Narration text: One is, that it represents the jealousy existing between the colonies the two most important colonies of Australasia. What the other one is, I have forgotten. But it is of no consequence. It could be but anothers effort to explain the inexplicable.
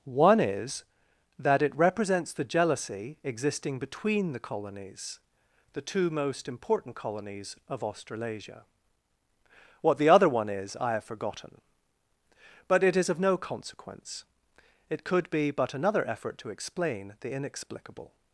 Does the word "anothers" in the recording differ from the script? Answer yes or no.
yes